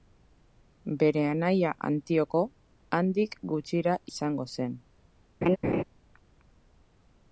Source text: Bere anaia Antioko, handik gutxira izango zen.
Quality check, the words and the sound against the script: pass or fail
fail